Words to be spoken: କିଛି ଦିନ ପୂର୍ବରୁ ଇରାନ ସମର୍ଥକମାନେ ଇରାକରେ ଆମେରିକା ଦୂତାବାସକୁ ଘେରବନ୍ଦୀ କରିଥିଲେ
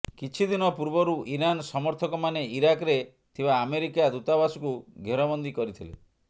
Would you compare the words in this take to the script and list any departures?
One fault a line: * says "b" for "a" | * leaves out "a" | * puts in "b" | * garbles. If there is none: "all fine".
* puts in "ଥିବା"